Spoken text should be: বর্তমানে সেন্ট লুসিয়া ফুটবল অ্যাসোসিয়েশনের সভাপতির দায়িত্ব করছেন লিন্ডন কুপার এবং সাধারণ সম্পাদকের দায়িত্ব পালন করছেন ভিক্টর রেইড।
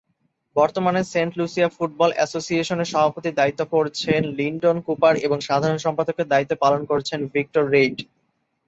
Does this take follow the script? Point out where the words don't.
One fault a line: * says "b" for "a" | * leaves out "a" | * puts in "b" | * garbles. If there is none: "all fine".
all fine